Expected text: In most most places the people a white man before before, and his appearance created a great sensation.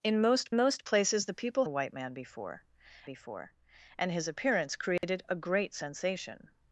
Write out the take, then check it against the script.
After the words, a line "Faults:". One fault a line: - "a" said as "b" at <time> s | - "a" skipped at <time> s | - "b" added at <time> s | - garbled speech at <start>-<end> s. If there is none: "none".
In most most places the people a white man before before, and his appearance created a great sensation.
Faults:
none